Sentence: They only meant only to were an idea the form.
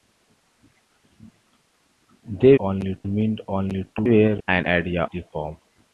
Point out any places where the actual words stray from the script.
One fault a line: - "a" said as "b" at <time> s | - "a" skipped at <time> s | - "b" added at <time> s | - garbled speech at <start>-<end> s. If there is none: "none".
none